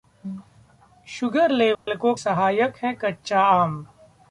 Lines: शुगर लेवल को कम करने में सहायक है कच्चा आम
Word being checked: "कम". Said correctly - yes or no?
no